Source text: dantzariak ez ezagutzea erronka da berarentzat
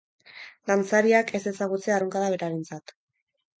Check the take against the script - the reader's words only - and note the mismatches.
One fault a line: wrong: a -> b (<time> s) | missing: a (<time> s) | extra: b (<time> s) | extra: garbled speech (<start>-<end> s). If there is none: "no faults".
no faults